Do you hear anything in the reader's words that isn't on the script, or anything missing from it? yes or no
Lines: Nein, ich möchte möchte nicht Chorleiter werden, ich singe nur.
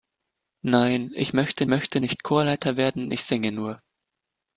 no